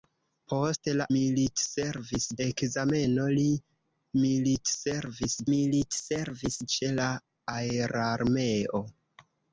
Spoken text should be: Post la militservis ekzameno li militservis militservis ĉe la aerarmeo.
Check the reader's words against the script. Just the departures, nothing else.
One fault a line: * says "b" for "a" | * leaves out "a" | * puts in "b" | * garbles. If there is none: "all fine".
all fine